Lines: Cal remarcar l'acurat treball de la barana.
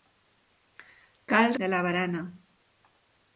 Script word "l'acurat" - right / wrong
wrong